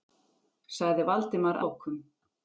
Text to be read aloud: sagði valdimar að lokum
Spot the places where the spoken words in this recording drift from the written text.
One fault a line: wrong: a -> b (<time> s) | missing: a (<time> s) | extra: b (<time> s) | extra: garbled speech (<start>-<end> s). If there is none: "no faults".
missing: að (1.6 s)